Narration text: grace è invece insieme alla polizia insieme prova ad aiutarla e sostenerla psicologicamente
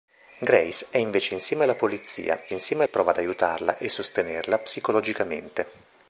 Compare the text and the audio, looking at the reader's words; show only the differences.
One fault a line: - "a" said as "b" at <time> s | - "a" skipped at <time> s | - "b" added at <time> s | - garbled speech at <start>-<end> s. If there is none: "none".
none